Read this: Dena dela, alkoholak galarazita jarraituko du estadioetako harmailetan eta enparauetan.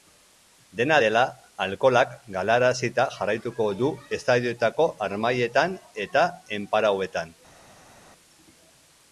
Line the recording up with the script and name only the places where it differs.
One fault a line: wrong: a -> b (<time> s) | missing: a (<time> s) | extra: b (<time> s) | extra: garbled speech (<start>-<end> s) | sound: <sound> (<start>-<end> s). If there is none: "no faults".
no faults